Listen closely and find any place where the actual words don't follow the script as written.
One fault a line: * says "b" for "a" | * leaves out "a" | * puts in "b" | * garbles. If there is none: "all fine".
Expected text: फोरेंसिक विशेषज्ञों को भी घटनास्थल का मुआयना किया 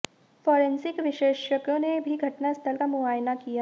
* says "ने" for "को"